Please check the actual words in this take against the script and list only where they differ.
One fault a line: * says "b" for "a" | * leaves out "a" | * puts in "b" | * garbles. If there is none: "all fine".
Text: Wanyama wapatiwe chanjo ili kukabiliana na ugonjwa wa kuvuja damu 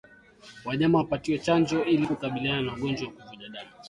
all fine